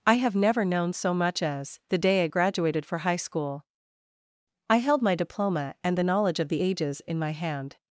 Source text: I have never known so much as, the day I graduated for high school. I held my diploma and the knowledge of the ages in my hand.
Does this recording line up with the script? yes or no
yes